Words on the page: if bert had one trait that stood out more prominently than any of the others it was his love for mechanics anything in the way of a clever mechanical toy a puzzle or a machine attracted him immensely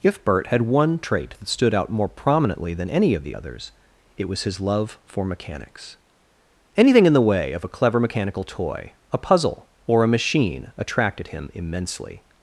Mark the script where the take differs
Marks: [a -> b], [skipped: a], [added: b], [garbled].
if bert had one trait that stood out more prominently than any of the others it was his love for mechanics anything in the way of a clever mechanical toy a puzzle or a machine attracted him immensely